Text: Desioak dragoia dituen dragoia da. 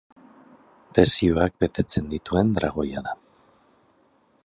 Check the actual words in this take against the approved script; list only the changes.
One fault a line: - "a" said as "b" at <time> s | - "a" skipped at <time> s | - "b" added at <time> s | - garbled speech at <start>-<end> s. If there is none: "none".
- "dragoia" said as "betetzen" at 1.6 s